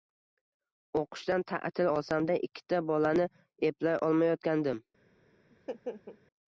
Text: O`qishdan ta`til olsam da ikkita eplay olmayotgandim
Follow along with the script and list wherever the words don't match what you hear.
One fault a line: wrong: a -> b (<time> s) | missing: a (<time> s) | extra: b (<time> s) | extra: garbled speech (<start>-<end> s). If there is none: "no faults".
extra: bolani (2.9 s)